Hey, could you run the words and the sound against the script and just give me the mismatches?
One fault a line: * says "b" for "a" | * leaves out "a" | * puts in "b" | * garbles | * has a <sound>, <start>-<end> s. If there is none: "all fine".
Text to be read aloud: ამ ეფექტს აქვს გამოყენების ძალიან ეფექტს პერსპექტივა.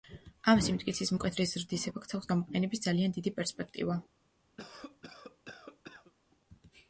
* puts in "სიმტკიცის მკვეთრი ზრდის"
* says "დიდი" for "ეფექტს"
* has a cough, 4.6-6.1 s